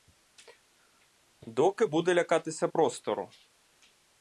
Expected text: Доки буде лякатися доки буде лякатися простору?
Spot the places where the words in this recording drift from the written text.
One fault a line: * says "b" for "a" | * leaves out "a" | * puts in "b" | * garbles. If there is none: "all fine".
* leaves out "доки буде лякатися"